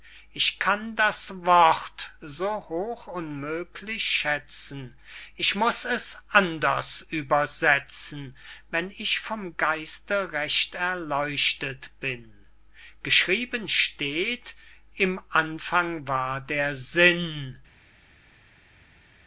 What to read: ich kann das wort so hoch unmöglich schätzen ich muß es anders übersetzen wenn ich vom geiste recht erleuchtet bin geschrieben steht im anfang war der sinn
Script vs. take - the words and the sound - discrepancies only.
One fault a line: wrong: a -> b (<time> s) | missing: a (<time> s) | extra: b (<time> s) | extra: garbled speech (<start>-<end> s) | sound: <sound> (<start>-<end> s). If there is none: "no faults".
no faults